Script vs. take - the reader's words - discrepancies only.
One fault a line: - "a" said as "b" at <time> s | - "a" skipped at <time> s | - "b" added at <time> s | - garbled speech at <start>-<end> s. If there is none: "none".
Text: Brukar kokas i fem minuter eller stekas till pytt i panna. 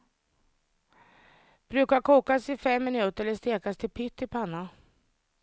none